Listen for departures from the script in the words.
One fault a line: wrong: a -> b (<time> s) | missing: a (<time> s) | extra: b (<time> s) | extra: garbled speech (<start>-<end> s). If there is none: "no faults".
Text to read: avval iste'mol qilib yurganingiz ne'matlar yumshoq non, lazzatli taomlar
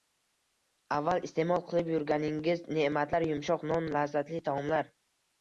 no faults